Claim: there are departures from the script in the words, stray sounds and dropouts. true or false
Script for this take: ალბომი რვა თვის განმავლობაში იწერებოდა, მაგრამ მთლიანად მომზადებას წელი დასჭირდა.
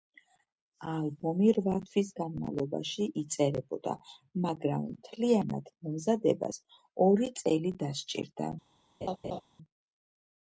true